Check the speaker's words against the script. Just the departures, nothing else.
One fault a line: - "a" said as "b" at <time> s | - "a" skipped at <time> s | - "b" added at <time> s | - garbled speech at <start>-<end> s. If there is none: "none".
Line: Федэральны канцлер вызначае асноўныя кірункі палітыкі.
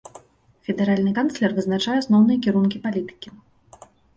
none